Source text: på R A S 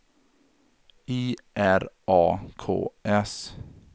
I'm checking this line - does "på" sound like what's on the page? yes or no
no